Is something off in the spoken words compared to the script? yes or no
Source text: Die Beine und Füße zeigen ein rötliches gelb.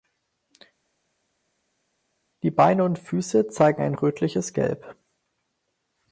no